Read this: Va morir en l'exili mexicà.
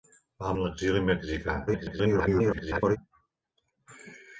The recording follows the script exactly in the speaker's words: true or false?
false